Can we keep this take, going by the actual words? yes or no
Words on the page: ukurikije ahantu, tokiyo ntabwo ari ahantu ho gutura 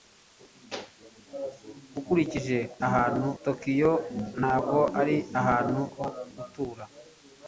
yes